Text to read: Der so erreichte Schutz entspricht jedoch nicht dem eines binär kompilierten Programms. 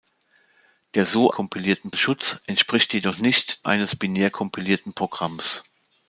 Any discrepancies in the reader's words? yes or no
yes